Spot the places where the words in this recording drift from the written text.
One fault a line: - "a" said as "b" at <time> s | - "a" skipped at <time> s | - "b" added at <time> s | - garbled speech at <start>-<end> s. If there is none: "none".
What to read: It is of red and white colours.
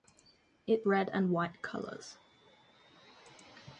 - "is of" skipped at 0.8 s